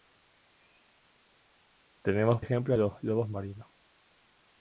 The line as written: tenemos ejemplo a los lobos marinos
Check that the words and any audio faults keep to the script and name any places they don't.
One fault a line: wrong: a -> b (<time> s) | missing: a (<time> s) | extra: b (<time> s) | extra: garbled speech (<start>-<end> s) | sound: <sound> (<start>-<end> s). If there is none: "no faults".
no faults